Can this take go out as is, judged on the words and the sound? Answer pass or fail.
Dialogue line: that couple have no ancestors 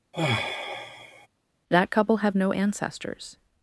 fail